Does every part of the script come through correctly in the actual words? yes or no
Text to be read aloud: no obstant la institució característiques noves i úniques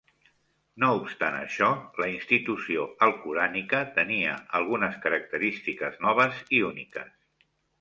no